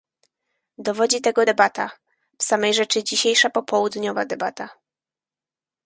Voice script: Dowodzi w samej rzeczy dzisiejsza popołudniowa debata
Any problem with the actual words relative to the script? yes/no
yes